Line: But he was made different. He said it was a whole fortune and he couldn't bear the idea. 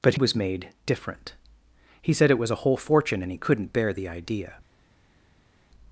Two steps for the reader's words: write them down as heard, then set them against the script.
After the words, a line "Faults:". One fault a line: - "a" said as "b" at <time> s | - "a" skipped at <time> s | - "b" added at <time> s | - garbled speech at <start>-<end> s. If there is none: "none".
But was made different. He said it was a whole fortune and he couldn't bear the idea.
Faults:
- "he" skipped at 0.1 s